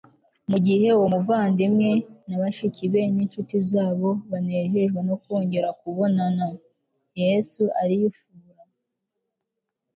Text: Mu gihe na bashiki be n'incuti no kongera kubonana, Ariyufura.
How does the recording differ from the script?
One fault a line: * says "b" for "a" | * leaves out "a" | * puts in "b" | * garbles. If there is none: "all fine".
* puts in "uwo muvandimwe"
* puts in "zabo banejejwe"
* puts in "Yesu"